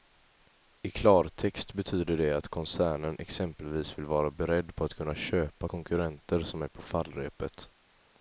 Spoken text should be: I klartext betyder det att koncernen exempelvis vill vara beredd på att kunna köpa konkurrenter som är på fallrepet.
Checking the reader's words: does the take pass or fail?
pass